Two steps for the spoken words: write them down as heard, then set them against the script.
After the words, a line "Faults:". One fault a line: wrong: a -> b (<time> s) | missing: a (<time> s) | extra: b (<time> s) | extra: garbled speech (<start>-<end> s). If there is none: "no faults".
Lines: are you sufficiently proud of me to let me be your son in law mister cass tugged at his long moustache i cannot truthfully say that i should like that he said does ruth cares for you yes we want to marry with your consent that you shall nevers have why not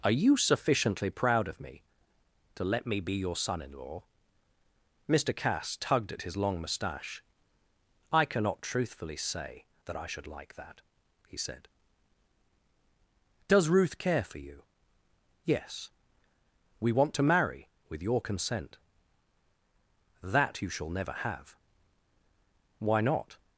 are you sufficiently proud of me to let me be your son in law mister cass tugged at his long moustache i cannot truthfully say that i should like that he said does ruth care for you yes we want to marry with your consent that you shall never have why not
Faults:
wrong: cares -> care (14.0 s)
wrong: nevers -> never (20.9 s)